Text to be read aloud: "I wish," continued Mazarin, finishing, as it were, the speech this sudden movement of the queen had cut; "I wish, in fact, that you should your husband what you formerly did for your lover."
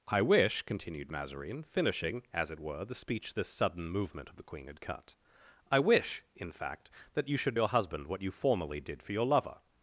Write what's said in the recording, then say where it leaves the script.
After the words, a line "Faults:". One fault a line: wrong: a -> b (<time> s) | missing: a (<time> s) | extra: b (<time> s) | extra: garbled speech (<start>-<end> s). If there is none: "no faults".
"I wish," continued Mazarin, finishing, as it were, the speech this sudden movement of the queen had cut; "I wish, in fact, that you should your husband what you formerly did for your lover."
Faults:
no faults